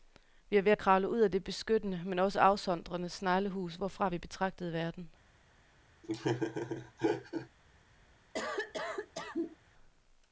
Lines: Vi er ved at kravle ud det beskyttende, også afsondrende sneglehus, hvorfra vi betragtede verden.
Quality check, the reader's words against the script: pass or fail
fail